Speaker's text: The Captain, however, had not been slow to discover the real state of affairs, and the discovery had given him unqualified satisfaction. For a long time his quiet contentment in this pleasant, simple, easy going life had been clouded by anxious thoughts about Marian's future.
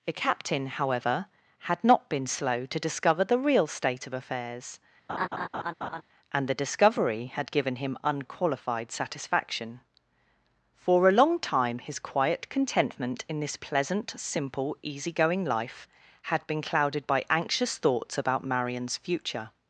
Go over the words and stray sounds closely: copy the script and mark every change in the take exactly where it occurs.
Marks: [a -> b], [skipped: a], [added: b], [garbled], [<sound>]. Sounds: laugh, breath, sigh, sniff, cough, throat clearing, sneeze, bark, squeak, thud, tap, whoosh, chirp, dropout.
The Captain, however, had not been slow to discover the real state of affairs, [laugh] and the discovery had given him unqualified satisfaction. For a long time his quiet contentment in this pleasant, simple, easy going life had been clouded by anxious thoughts about Marian's future.